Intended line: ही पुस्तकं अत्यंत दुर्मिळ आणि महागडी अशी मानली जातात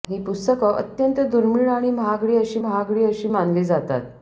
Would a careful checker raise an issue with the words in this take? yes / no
yes